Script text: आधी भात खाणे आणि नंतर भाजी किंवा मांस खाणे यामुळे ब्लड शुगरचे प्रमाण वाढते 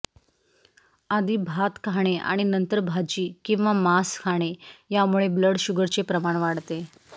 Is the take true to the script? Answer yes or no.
yes